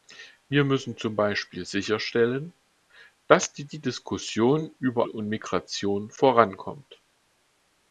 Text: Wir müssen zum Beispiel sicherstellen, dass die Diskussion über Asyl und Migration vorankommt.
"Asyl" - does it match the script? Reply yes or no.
no